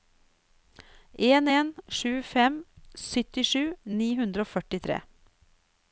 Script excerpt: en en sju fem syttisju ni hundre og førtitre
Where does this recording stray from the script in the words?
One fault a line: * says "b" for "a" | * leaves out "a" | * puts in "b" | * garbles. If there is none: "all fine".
all fine